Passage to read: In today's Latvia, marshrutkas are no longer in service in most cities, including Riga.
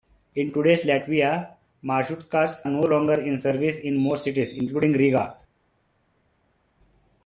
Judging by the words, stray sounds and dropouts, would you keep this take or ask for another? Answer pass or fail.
fail